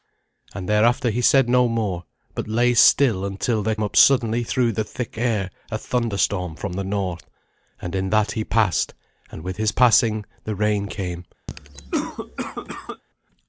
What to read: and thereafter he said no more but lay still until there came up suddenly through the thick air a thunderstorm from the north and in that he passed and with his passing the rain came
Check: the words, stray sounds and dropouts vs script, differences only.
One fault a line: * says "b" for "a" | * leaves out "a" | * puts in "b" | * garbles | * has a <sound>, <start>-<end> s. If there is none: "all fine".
* leaves out "came"
* has a cough, 11.5-13.0 s